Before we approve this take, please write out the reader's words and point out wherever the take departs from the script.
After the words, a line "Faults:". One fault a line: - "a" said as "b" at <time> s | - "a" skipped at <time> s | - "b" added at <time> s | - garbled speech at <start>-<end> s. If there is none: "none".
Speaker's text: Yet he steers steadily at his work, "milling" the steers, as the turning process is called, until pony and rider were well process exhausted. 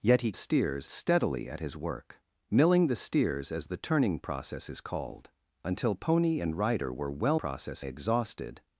Yet he steers steadily at his work, "milling" the steers, as the turning process is called, until pony and rider were well process exhausted.
Faults:
none